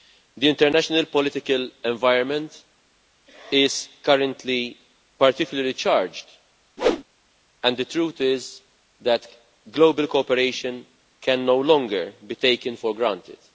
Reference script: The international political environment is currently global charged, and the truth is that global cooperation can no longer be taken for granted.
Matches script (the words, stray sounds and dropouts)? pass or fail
fail